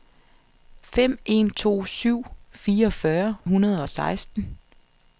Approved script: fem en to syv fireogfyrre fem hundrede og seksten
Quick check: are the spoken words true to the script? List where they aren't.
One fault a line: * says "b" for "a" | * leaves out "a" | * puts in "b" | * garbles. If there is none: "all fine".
* leaves out "fem"